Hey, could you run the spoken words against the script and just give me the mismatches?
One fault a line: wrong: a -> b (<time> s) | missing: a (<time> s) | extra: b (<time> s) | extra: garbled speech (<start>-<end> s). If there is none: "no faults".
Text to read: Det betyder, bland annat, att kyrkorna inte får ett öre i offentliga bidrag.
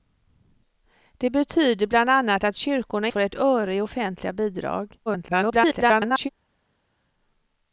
missing: inte (3.1 s)
extra: garbled speech (5.1-6.3 s)